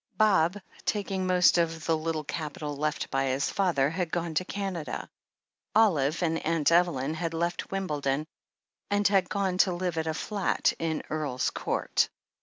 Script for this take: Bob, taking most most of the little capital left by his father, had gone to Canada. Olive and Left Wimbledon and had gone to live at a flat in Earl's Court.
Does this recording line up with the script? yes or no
no